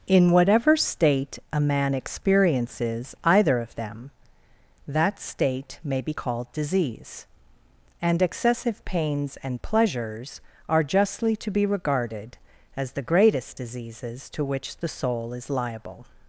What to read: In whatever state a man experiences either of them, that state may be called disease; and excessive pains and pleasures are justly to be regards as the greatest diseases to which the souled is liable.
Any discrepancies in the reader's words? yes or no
yes